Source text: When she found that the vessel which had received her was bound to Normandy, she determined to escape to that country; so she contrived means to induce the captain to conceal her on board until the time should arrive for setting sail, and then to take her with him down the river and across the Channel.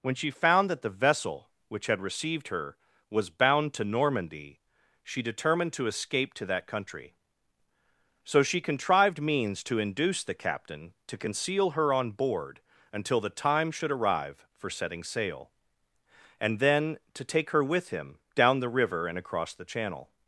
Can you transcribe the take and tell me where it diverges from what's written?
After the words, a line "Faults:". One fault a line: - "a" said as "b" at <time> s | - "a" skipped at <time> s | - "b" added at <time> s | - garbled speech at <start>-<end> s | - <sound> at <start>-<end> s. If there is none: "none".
When she found that the vessel which had received her was bound to Normandy, she determined to escape to that country; so she contrived means to induce the captain to conceal her on board until the time should arrive for setting sail, and then to take her with him down the river and across the Channel.
Faults:
none